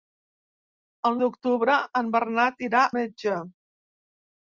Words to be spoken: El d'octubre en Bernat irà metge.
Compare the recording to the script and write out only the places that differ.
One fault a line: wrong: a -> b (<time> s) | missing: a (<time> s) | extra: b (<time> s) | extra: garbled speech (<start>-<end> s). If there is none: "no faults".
no faults